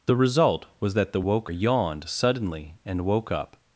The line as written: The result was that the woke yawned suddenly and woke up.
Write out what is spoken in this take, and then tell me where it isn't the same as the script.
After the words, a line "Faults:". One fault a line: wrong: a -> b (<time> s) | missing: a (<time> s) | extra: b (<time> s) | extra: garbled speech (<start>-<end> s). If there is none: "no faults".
The result was that the woke yawned suddenly and woke up.
Faults:
no faults